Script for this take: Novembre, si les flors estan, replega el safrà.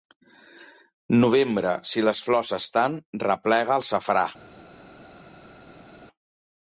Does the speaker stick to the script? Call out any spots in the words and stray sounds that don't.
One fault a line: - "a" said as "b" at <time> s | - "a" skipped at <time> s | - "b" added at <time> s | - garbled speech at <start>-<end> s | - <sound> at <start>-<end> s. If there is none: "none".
none